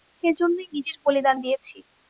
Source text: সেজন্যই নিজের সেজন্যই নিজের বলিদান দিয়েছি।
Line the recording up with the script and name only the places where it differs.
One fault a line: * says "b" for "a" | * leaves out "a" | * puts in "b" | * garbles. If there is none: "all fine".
* leaves out "সেজন্যই নিজের"